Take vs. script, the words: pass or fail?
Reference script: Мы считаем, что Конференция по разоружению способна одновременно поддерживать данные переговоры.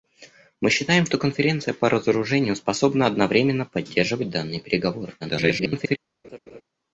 fail